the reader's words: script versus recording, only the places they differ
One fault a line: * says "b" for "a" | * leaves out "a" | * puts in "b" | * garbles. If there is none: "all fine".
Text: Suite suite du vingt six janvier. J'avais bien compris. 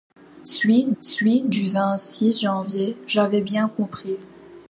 all fine